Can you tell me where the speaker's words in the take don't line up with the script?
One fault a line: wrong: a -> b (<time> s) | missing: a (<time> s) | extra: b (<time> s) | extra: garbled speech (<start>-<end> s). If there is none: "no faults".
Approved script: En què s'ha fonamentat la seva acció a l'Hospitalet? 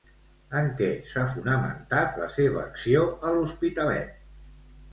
no faults